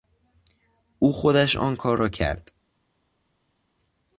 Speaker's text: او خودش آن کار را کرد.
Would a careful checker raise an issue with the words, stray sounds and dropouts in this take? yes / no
no